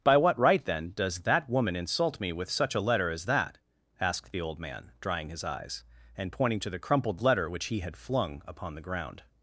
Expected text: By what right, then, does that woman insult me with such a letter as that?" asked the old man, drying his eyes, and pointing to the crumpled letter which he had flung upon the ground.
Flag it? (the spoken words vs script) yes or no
no